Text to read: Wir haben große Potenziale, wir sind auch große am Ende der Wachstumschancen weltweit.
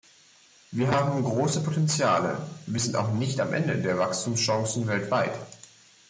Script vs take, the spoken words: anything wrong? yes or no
yes